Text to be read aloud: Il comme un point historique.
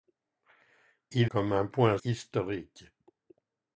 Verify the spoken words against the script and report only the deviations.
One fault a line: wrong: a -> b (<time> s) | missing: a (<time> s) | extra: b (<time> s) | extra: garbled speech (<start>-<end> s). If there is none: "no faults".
no faults